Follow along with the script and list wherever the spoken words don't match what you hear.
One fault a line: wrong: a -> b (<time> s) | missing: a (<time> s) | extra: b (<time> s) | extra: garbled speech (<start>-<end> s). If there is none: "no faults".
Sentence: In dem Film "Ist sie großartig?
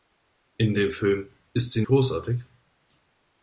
no faults